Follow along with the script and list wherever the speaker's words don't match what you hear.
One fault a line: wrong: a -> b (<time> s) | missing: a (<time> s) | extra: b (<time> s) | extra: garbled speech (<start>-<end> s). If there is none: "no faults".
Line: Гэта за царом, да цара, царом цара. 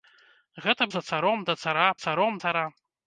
no faults